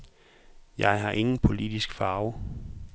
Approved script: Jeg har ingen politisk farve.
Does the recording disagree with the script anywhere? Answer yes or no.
no